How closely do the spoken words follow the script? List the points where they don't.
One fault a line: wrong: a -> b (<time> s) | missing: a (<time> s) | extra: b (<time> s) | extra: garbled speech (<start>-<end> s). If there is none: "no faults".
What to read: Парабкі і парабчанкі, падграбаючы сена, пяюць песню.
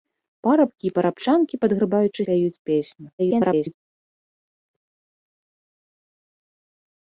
missing: сена (2.2 s)
extra: garbled speech (3.2-3.7 s)